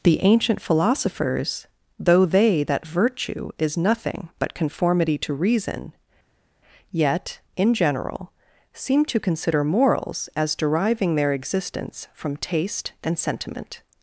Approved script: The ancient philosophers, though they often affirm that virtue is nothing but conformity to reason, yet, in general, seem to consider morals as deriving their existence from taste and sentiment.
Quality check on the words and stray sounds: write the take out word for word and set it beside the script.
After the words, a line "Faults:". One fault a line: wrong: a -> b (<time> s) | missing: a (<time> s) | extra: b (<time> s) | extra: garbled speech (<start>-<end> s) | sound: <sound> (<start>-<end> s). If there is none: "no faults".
The ancient philosophers, though they that virtue is nothing but conformity to reason, yet, in general, seem to consider morals as deriving their existence from taste and sentiment.
Faults:
missing: often affirm (2.6 s)